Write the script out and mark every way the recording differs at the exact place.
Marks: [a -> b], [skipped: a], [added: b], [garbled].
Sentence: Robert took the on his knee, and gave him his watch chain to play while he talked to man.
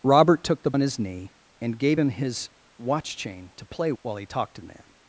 Robert took the on his knee, and gave him his watch chain to play while he talked to man.